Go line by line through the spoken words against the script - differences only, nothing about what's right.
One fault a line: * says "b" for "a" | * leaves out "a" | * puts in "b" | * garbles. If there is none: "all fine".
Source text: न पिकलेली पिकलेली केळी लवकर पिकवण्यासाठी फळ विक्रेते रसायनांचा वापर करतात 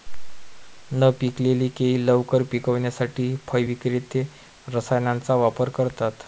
* leaves out "पिकलेली"